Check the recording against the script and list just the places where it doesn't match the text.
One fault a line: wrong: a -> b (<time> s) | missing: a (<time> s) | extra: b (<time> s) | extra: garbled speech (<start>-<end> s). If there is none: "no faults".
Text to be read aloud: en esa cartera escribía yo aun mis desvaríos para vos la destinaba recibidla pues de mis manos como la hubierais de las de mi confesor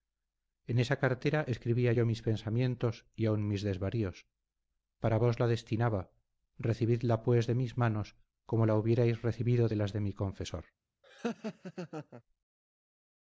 extra: mis pensamientos y (2.1 s)
extra: recibido (9.2 s)